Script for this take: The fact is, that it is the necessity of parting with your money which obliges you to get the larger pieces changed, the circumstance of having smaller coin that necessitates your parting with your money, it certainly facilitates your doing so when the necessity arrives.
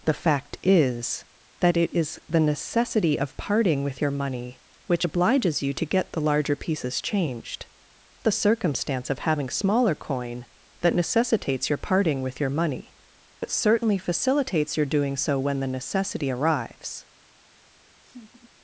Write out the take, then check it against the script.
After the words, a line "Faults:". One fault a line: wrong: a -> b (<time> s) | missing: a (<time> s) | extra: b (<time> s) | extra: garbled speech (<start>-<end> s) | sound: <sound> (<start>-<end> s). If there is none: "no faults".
The fact is, that it is the necessity of parting with your money which obliges you to get the larger pieces changed, the circumstance of having smaller coin that necessitates your parting with your money, it certainly facilitates your doing so when the necessity arrives.
Faults:
sound: laugh (18.0-18.5 s)